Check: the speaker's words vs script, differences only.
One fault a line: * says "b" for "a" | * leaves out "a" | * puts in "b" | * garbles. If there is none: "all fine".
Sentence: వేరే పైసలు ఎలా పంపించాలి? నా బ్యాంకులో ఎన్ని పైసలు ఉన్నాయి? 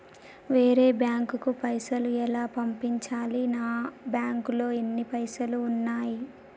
* puts in "బ్యాంకుకు"